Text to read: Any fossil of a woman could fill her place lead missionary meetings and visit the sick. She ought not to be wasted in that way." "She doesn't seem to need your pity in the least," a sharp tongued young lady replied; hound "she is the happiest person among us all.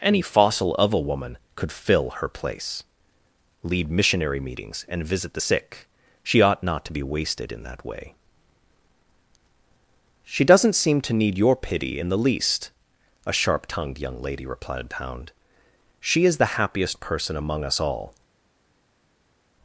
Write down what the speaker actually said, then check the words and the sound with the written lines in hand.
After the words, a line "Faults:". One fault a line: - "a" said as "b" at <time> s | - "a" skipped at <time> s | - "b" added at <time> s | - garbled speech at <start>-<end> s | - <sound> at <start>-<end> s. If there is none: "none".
Any fossil of a woman could fill her place lead missionary meetings and visit the sick. She ought not to be wasted in that way." "She doesn't seem to need your pity in the least," a sharp tongued young lady replied; hound "she is the happiest person among us all.
Faults:
none